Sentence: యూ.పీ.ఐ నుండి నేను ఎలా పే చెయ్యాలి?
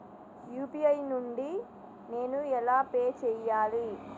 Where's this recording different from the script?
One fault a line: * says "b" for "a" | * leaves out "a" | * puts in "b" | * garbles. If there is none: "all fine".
all fine